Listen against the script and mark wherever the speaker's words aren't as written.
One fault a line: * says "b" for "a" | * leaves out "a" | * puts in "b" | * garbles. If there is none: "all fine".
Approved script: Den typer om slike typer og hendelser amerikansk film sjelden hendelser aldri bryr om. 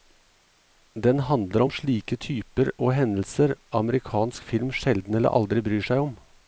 * says "handler" for "typer"
* says "eller" for "hendelser"
* puts in "seg"